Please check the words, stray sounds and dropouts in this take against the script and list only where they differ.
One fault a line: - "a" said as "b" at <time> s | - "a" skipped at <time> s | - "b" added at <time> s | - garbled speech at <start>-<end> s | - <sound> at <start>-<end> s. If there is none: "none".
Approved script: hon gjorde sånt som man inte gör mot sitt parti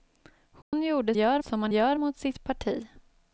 - dropout at 0.6-0.7 s
- "sånt" said as "gör" at 1.1 s
- "inte" skipped at 1.7 s